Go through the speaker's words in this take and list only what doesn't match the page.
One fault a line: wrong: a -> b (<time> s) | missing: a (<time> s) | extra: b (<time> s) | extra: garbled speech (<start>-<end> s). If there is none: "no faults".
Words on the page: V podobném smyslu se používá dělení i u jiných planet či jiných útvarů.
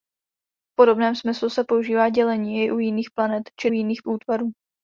no faults